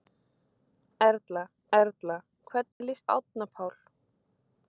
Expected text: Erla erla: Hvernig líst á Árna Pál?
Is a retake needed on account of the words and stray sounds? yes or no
yes